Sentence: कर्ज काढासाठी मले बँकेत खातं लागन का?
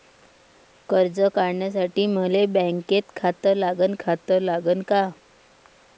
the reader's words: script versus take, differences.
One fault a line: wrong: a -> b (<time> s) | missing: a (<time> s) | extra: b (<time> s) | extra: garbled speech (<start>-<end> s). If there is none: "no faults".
extra: खातं लागन (4.0 s)